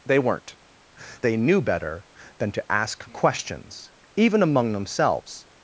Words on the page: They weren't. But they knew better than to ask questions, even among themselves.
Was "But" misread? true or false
true